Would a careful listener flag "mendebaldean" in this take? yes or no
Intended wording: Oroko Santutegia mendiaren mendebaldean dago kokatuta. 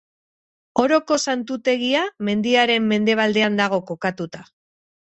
no